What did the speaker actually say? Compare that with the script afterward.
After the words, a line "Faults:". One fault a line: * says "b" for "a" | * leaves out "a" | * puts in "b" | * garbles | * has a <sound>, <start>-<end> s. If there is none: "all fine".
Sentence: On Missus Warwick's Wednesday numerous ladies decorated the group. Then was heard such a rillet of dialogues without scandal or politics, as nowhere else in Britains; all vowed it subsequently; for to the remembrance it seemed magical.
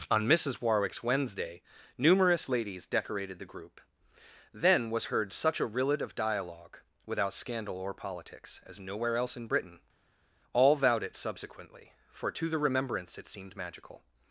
On Missus Warwick's Wednesday numerous ladies decorated the group. Then was heard such a rillet of dialogue without scandal or politics, as nowhere else in Britain; all vowed it subsequently; for to the remembrance it seemed magical.
Faults:
* says "dialogue" for "dialogues"
* says "Britain" for "Britains"